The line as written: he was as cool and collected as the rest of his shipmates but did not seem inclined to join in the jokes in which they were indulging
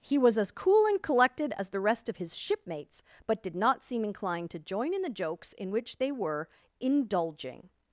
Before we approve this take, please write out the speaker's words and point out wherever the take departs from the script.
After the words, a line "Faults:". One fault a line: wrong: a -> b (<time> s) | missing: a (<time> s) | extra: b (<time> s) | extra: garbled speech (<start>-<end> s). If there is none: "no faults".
he was as cool and collected as the rest of his shipmates but did not seem inclined to join in the jokes in which they were indulging
Faults:
no faults